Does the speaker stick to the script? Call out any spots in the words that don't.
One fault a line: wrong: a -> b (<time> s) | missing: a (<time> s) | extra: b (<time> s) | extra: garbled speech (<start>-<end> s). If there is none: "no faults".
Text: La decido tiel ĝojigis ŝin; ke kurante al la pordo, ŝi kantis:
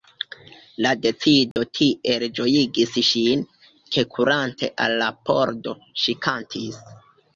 no faults